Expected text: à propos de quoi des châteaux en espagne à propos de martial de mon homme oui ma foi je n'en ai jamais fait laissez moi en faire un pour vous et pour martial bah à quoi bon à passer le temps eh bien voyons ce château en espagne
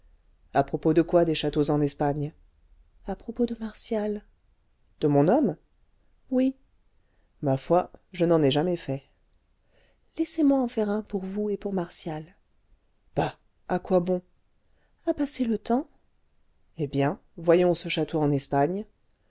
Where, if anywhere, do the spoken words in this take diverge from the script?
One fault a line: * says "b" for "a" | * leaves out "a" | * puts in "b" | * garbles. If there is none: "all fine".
all fine